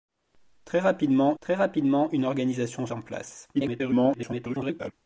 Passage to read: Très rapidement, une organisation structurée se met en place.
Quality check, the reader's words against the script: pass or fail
fail